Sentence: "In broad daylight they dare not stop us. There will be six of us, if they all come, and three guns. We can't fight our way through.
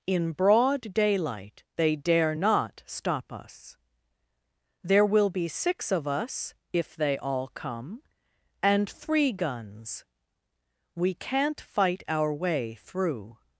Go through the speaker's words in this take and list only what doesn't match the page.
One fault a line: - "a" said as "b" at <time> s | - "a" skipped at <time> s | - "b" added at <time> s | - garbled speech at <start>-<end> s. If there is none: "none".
none